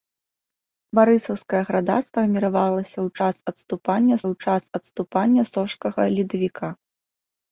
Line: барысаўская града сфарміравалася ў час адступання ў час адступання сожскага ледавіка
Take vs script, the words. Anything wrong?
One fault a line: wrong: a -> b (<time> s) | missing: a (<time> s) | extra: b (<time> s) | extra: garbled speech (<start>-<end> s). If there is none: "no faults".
no faults